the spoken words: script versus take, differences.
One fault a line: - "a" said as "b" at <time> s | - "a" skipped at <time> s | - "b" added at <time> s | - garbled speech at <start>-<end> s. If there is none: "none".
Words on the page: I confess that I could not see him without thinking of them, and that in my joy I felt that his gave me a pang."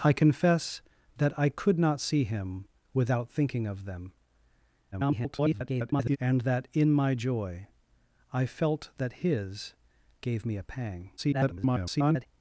- garbled speech at 4.9-6.2 s
- garbled speech at 11.2-12.3 s